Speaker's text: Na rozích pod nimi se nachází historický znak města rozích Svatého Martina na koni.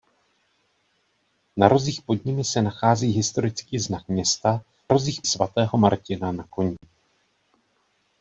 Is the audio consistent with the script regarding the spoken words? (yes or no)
yes